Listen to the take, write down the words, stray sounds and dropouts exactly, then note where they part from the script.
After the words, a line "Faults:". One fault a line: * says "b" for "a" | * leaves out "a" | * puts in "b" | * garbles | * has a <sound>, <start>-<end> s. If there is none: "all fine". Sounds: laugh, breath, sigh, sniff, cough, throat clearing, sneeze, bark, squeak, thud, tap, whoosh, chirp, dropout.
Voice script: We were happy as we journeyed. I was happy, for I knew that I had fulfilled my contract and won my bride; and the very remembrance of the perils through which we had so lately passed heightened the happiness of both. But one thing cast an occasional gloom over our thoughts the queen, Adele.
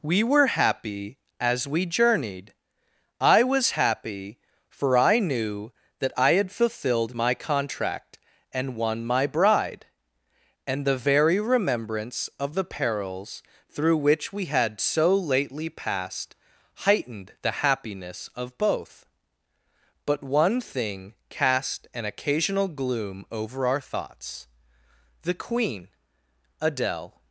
We were happy as we journeyed. I was happy, for I knew that I had fulfilled my contract and won my bride; and the very remembrance of the perils through which we had so lately passed heightened the happiness of both. But one thing cast an occasional gloom over our thoughts the queen, Adele.
Faults:
all fine